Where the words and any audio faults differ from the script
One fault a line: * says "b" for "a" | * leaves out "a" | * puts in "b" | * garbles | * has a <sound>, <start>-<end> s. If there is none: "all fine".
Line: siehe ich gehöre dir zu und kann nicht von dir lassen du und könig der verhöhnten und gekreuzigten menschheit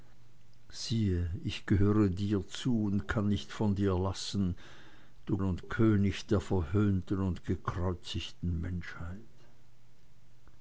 all fine